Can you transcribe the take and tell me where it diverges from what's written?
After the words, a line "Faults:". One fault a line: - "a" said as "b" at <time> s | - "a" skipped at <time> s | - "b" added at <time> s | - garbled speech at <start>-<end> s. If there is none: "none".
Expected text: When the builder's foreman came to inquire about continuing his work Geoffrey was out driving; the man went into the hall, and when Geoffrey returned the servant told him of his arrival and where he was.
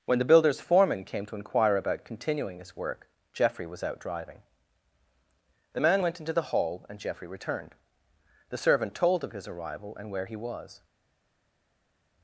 When the builder's foreman came to inquire about continuing his work Geoffrey was out driving; the man went into the hall, and Geoffrey returned the servant told of his arrival and where he was.
Faults:
- "when" skipped at 7.0 s
- "him" skipped at 9.2 s